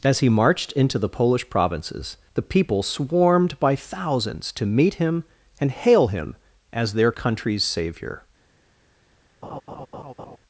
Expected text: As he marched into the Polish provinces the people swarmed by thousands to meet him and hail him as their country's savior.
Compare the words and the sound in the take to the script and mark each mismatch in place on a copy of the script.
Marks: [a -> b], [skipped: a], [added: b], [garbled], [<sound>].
As he marched into the Polish provinces the people swarmed by thousands to meet him and hail him as their country's savior. [laugh]